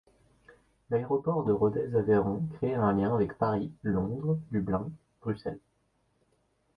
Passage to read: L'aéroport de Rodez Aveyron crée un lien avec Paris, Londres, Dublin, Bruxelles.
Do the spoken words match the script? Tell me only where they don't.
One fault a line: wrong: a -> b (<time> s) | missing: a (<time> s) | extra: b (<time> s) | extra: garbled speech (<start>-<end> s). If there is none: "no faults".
no faults